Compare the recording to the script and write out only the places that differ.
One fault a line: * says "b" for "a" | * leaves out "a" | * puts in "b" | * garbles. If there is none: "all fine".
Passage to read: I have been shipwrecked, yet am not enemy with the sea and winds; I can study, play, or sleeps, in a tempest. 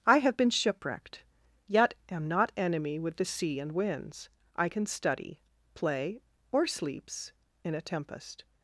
all fine